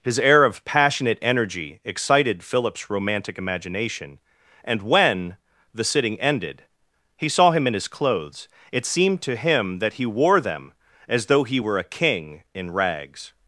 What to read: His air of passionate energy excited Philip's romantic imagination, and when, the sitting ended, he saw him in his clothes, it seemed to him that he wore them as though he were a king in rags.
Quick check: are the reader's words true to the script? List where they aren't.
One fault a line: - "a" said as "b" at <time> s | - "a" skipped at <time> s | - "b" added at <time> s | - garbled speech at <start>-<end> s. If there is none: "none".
none